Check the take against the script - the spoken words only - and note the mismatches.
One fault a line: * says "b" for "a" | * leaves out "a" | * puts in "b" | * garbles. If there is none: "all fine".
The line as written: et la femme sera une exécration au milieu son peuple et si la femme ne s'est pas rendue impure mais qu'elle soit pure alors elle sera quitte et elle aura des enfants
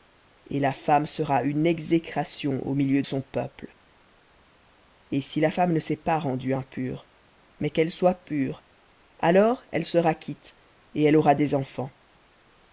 all fine